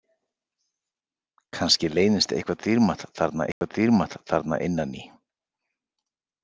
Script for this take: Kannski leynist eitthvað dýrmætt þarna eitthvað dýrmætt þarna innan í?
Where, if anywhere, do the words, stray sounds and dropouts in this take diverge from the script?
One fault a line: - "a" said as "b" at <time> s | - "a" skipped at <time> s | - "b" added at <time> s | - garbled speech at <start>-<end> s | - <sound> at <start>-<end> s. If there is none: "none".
- dropout at 3.5-3.6 s